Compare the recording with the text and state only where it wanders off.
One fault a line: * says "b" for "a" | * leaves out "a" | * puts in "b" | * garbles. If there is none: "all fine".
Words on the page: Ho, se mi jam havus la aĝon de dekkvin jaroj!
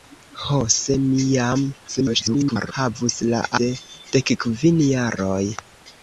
* garbles
* leaves out "aĝon"